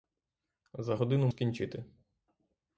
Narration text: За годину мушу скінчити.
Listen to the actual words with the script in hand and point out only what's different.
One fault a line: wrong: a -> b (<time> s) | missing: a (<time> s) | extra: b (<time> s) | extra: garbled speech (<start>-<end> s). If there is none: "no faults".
missing: мушу (1.3 s)